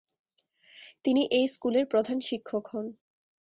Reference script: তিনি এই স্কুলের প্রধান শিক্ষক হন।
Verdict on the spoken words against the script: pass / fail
pass